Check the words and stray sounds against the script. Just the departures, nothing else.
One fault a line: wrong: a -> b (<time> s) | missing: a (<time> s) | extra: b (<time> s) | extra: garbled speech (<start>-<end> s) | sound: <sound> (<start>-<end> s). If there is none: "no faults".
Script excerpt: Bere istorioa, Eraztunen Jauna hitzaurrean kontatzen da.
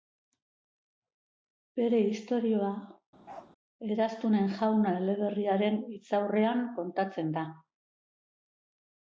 sound: bark (3.2-3.5 s)
extra: eleberriaren (5.0 s)